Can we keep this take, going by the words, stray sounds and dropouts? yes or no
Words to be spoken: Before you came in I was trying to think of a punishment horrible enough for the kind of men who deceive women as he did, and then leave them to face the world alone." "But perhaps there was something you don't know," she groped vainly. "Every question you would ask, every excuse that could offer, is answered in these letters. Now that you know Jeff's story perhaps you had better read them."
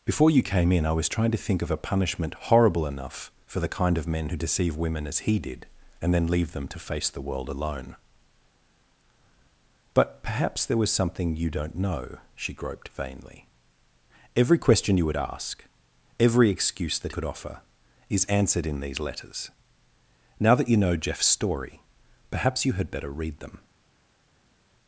yes